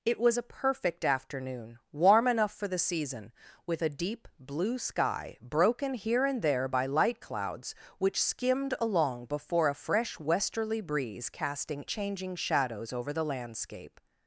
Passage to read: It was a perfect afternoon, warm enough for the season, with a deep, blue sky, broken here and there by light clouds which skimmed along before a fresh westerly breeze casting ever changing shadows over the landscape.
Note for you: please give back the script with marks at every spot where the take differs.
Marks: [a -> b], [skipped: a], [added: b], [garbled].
It was a perfect afternoon, warm enough for the season, with a deep, blue sky, broken here and there by light clouds which skimmed along before a fresh westerly breeze casting [skipped: ever] changing shadows over the landscape.